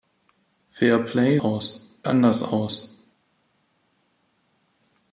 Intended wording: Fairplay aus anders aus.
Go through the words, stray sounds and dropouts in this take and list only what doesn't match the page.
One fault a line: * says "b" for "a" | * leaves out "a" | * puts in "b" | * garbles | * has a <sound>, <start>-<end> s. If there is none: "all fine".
all fine